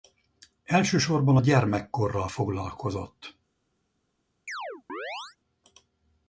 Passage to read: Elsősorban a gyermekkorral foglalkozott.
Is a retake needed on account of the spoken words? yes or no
no